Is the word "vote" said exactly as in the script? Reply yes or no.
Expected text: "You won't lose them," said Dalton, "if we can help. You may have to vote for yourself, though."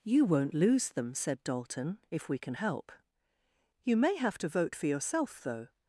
yes